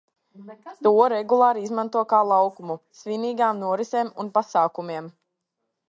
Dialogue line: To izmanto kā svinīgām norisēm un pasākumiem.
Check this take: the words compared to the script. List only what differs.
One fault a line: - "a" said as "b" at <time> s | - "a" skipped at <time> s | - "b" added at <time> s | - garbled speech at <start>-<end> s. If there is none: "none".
- "regulāri" added at 1.1 s
- "laukumu" added at 2.3 s